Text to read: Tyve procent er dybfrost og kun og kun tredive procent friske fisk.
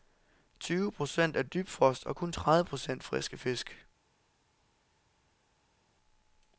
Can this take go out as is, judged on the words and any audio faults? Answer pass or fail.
fail